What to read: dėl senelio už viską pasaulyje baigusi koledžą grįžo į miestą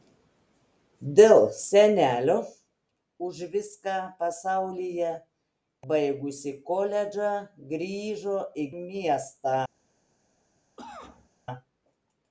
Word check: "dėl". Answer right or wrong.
right